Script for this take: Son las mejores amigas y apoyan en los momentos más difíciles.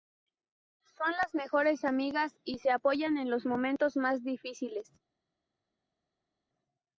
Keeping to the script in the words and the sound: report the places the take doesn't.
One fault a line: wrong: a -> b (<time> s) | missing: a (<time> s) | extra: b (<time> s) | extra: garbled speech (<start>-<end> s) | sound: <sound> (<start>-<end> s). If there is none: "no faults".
extra: se (2.6 s)